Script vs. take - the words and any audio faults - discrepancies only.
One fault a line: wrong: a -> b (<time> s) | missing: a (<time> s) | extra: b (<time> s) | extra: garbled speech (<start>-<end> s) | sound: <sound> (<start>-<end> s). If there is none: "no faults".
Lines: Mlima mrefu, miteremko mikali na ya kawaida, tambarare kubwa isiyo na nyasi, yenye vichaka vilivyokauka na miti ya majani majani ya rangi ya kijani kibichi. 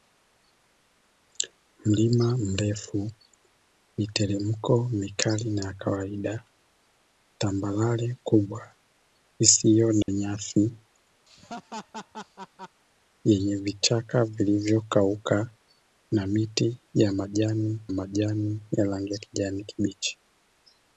sound: dropout (10.0-10.1 s)
sound: laugh (11.3-12.8 s)